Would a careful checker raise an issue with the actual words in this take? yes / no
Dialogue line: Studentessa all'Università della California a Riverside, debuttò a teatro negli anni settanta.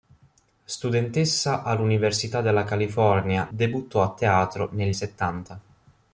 yes